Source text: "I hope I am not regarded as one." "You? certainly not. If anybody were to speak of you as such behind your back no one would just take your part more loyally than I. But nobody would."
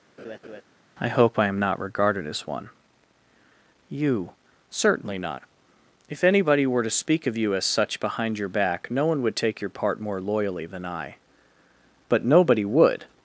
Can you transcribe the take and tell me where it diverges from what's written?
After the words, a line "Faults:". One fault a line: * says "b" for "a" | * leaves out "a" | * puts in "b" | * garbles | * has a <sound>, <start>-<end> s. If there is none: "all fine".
"I hope I am not regarded as one." "You? certainly not. If anybody were to speak of you as such behind your back no one would take your part more loyally than I. But nobody would."
Faults:
* has a laugh, 0.2-0.6 s
* leaves out "just"